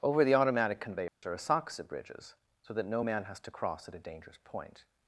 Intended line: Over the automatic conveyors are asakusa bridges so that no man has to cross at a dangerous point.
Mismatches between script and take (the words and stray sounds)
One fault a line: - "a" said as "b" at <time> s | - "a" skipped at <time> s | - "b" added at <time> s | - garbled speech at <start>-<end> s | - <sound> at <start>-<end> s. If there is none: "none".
- dropout at 1.1-1.2 s